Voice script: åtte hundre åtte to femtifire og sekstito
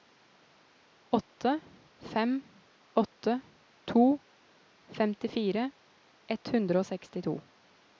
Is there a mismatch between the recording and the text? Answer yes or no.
yes